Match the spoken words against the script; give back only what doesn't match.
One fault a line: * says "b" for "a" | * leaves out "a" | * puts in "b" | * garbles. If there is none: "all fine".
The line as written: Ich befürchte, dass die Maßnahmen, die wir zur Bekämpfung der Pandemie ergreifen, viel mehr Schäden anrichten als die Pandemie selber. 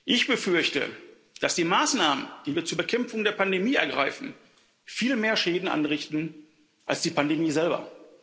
all fine